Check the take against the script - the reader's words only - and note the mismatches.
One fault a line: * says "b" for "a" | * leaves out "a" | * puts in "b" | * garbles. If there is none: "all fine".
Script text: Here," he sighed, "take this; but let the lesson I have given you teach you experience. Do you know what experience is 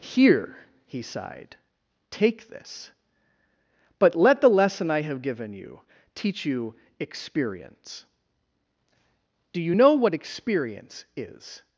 all fine